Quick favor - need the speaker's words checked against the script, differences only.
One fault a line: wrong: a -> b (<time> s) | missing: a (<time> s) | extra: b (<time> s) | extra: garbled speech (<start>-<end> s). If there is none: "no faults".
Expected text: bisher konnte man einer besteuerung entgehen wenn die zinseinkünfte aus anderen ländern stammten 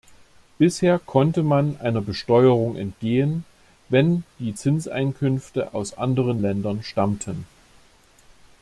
no faults